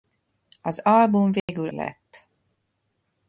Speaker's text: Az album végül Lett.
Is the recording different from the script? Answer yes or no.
no